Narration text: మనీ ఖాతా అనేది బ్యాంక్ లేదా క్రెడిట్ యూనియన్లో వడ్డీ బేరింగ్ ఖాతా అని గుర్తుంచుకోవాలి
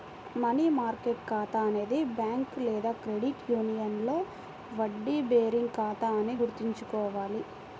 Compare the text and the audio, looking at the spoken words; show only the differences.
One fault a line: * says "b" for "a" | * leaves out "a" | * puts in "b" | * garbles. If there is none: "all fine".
* puts in "మార్కెట్"